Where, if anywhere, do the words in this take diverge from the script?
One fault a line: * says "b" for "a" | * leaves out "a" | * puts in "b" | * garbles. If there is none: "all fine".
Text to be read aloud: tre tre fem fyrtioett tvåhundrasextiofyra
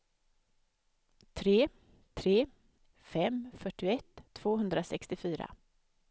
all fine